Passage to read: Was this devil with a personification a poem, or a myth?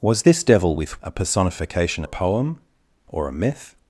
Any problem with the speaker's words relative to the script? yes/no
no